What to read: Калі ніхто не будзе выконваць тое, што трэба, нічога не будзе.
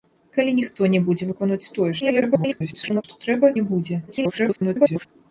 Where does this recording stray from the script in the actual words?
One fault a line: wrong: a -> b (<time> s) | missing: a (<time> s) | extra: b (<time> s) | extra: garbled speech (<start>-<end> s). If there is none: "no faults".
extra: garbled speech (2.0-3.0 s)
missing: нічога (3.5 s)
extra: garbled speech (4.1-5.1 s)